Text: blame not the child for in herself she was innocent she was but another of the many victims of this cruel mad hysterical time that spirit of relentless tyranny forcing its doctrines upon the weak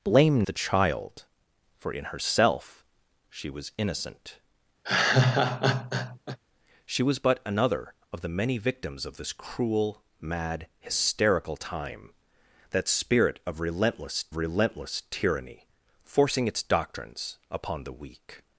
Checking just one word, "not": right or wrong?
wrong